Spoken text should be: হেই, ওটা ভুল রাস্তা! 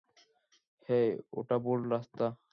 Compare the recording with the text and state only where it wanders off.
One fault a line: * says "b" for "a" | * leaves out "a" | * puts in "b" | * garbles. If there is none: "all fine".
all fine